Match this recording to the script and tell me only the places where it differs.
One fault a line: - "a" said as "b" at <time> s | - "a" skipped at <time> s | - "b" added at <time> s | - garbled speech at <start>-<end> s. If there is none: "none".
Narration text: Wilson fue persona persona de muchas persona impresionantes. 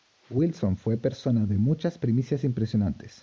- "persona" skipped at 1.4 s
- "persona" said as "primicias" at 2.0 s